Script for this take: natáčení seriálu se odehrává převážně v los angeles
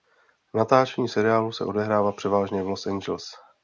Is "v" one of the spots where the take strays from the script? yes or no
no